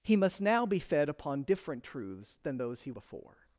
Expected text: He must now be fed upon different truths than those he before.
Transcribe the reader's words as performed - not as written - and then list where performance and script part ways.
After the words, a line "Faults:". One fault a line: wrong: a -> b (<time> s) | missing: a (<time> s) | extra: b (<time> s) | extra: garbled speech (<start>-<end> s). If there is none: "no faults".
He must now be fed upon different truths than those he before.
Faults:
no faults